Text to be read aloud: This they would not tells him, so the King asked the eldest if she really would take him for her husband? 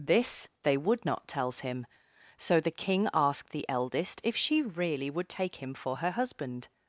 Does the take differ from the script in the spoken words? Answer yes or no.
no